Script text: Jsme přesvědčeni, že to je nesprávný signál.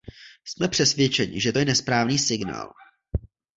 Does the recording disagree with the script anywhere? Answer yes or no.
no